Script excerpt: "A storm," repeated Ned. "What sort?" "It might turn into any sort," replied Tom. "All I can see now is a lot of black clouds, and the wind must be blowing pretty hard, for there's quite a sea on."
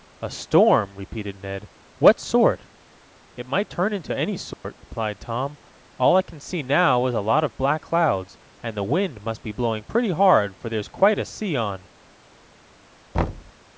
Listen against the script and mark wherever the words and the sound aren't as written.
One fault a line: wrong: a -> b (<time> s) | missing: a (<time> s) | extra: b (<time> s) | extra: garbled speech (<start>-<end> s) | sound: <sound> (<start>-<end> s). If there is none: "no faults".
sound: dropout (4.5-4.6 s)
sound: thud (13.1-13.5 s)